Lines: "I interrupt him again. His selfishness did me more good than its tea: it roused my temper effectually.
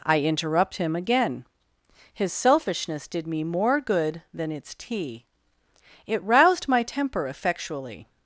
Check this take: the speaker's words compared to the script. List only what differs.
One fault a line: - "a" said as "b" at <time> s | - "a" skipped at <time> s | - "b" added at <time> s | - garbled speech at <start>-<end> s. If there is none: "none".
none